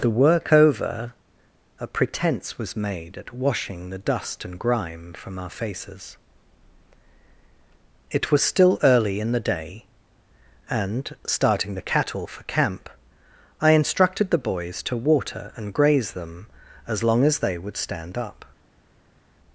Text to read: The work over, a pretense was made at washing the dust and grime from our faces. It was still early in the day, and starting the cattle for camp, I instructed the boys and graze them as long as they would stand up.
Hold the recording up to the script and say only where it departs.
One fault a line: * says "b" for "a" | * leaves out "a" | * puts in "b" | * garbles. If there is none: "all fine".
* puts in "to water"